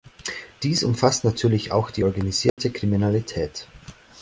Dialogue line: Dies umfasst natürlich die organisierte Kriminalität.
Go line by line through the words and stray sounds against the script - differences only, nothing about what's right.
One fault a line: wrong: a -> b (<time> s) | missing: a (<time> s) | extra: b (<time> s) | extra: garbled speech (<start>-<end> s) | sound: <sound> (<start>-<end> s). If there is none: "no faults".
extra: auch (1.7 s)
sound: dropout (2.5-2.6 s)